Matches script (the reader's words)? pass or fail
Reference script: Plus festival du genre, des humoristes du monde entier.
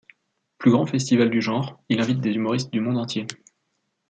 fail